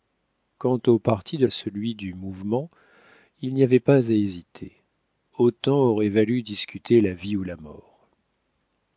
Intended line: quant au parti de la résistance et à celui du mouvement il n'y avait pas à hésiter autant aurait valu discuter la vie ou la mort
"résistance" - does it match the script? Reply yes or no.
no